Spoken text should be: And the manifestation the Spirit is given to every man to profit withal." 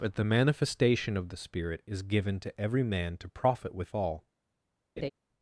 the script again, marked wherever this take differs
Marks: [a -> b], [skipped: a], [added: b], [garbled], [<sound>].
[And -> But] the manifestation [added: of] the Spirit is given to every man to profit withal." [laugh]